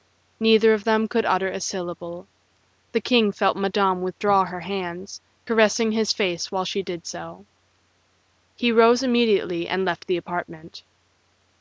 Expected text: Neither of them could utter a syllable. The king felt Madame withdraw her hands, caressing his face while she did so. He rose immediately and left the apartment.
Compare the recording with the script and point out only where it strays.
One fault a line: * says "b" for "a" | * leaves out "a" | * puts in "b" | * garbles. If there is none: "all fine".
all fine